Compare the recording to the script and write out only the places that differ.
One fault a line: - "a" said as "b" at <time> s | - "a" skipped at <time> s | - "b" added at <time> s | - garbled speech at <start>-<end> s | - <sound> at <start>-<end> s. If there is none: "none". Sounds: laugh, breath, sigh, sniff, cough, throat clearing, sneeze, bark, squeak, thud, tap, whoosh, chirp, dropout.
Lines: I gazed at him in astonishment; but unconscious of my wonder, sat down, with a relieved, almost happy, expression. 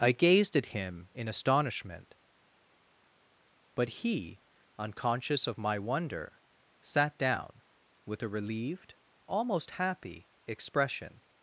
- "he" added at 4.0 s